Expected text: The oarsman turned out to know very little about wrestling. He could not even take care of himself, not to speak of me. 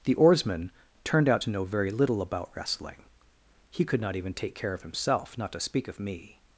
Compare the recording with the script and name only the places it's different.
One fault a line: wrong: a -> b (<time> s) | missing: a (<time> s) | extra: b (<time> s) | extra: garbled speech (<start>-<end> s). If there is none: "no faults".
no faults